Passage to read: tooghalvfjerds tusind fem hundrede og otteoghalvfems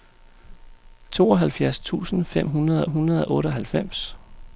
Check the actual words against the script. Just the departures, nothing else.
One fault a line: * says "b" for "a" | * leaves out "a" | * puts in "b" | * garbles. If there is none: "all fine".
* puts in "hundrede"